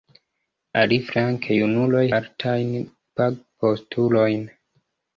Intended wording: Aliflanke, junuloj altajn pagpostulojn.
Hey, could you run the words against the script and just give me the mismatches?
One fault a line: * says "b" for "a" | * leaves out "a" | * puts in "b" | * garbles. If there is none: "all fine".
all fine